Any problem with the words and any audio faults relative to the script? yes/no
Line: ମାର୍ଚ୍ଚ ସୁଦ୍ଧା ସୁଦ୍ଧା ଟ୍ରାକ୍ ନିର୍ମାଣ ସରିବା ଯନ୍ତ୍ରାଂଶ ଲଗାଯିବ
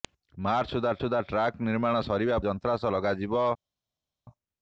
no